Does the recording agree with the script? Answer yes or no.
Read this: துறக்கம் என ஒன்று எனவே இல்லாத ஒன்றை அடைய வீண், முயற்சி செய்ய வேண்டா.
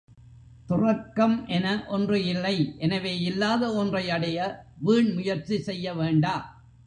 no